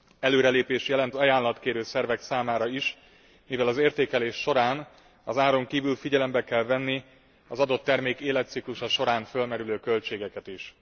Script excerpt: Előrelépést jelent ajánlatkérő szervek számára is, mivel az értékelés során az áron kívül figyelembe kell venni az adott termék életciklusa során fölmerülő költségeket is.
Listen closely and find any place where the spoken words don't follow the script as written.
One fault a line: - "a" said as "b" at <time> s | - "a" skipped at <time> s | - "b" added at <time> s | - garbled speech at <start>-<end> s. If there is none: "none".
none